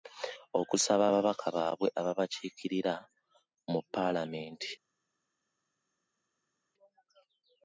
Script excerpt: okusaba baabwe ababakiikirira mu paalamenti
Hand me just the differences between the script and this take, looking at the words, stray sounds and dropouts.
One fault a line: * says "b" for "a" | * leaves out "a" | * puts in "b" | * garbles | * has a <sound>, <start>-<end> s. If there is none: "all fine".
* puts in "ababaka"